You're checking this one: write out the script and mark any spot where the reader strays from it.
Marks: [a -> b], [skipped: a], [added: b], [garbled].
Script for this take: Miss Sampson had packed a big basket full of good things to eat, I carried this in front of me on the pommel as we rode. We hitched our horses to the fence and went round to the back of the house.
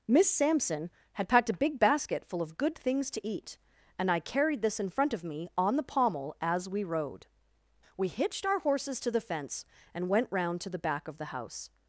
Miss Sampson had packed a big basket full of good things to eat, [added: and] I carried this in front of me on the pommel as we rode. We hitched our horses to the fence and went round to the back of the house.